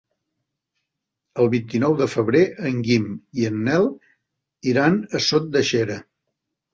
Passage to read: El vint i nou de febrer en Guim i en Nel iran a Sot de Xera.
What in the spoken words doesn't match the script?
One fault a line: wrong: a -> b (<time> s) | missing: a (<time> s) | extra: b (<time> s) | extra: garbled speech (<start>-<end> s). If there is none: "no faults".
no faults